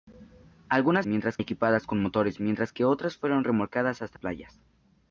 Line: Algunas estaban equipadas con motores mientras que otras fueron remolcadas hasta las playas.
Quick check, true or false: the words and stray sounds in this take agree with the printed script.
false